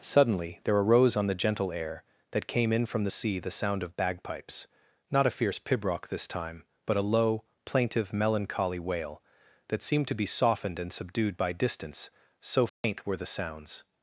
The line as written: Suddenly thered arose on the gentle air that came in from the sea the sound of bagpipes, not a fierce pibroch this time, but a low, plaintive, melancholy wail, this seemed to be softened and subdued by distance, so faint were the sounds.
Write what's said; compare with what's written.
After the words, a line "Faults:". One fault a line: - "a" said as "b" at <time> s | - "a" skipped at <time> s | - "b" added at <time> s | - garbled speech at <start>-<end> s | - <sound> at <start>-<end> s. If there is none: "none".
Suddenly there arose on the gentle air that came in from the sea the sound of bagpipes, not a fierce pibroch this time, but a low, plaintive, melancholy wail, that seemed to be softened and subdued by distance, so faint were the sounds.
Faults:
- "thered" said as "there" at 0.6 s
- "this" said as "that" at 9.7 s
- dropout at 12.7-12.8 s